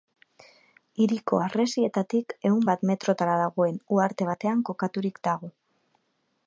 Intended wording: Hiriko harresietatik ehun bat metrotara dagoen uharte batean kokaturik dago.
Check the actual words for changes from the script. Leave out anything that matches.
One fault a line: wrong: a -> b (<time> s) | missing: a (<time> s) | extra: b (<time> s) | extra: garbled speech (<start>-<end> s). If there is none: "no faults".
no faults